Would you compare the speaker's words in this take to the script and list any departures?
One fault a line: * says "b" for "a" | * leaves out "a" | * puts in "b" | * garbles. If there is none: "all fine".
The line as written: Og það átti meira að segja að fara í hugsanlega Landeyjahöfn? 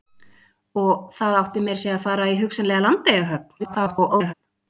* garbles